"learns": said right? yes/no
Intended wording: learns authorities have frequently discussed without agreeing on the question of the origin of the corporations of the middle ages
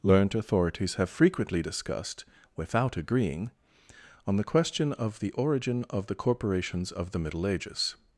no